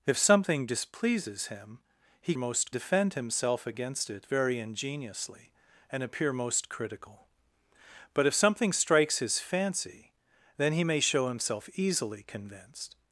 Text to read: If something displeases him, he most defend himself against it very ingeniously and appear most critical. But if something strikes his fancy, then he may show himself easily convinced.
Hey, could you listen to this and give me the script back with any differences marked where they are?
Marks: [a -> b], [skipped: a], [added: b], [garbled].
If something displeases him, he most defend himself against it very ingeniously and appear most critical. But if something strikes his fancy, then he may show himself easily convinced.